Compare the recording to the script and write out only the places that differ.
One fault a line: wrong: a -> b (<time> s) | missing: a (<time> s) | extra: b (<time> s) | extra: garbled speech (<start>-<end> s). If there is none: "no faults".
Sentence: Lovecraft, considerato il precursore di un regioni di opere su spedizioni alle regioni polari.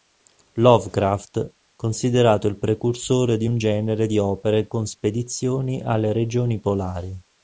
wrong: regioni -> genere (3.5 s)
wrong: su -> con (4.7 s)